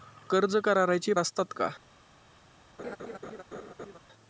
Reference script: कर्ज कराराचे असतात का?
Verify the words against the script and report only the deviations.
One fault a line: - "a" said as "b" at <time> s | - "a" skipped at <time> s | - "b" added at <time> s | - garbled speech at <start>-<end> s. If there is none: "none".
none